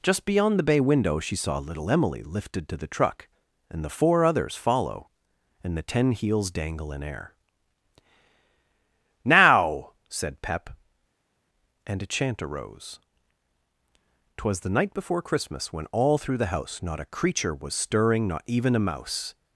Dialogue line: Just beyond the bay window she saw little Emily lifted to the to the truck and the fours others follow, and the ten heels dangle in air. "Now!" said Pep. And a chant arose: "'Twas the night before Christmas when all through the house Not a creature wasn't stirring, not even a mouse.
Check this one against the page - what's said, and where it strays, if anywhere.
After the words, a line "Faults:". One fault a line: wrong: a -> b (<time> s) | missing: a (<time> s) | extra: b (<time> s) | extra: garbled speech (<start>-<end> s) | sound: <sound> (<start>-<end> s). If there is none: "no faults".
Just beyond the bay window she saw little Emily lifted to the truck and the four others follow, and the ten heels dangle in air. "Now!" said Pep. And a chant arose: "'Twas the night before Christmas when all through the house Not a creature was stirring, not even a mouse.
Faults:
missing: to the (2.9 s)
wrong: fours -> four (3.9 s)
wrong: wasn't -> was (17.6 s)